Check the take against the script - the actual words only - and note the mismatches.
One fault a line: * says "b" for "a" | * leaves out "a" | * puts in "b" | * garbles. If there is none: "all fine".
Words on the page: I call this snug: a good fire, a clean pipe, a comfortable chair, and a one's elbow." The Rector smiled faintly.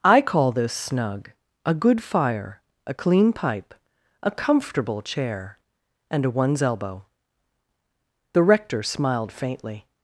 all fine